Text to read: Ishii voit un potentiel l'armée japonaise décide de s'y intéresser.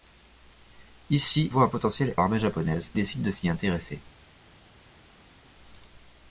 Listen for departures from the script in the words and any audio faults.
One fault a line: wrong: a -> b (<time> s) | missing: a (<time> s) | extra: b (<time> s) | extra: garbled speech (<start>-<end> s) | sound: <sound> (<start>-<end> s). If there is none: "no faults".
no faults